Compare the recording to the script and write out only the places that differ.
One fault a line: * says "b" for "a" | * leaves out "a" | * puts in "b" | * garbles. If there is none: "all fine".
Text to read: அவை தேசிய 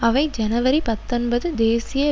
* puts in "ஜனவரி பத்தொன்பது"